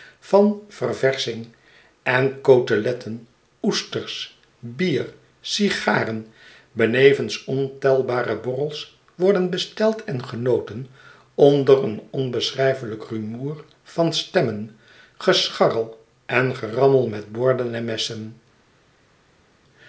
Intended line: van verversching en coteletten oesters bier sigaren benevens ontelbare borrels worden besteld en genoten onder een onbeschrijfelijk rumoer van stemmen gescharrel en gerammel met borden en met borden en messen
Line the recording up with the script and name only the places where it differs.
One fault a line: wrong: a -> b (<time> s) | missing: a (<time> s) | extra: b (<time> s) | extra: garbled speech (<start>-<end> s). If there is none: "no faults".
missing: met borden en (17.9 s)